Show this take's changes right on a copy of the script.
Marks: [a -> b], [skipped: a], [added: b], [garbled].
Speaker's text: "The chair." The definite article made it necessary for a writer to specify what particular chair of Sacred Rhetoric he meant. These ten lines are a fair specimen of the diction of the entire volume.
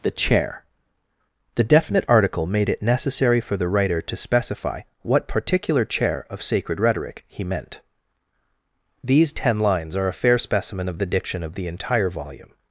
"The chair." The definite article made it necessary for [a -> the] writer to specify what particular chair of Sacred Rhetoric he meant. These ten lines are a fair specimen of the diction of the entire volume.